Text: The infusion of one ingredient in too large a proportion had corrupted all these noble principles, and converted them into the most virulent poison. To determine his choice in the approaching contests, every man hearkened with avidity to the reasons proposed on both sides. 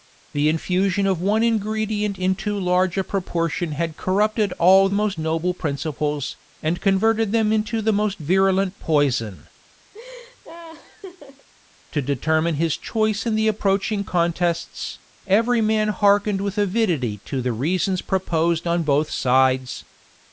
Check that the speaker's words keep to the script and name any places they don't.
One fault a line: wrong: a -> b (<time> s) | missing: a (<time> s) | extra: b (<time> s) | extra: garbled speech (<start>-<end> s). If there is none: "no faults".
wrong: these -> most (4.9 s)